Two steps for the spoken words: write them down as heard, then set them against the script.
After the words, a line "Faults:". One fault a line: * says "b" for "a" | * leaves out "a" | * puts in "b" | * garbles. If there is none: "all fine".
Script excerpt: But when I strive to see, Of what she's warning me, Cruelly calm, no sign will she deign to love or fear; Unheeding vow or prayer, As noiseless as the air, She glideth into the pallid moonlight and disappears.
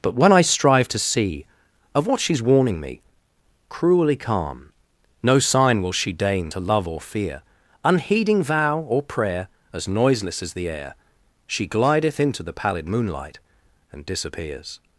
But when I strive to see, Of what she's warning me, Cruelly calm, no sign will she deign to love or fear; Unheeding vow or prayer, As noiseless as the air, She glideth into the pallid moonlight and disappears.
Faults:
all fine